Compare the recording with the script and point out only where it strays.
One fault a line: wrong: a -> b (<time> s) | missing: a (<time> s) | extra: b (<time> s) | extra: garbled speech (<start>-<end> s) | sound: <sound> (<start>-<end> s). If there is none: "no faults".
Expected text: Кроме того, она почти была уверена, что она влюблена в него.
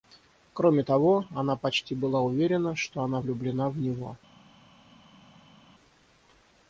no faults